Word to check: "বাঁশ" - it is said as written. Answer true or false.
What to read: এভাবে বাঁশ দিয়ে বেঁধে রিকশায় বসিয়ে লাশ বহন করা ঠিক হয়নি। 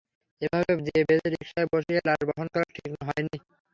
false